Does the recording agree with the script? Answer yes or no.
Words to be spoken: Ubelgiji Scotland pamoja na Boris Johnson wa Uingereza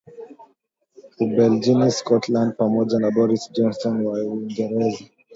yes